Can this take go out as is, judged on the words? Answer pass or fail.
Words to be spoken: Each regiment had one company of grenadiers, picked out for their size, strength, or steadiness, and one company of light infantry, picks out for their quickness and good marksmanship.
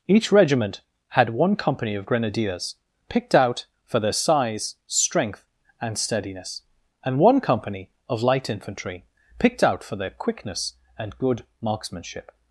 fail